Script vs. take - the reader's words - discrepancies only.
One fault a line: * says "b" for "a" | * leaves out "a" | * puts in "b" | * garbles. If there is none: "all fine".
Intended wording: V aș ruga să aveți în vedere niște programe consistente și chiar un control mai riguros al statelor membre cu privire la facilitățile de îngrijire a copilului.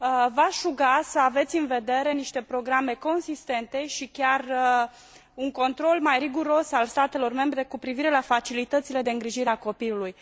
all fine